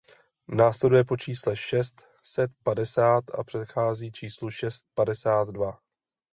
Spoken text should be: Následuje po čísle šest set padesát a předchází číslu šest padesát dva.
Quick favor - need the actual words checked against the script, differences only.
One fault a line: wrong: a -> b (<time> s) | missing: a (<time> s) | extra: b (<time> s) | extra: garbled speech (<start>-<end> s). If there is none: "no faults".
no faults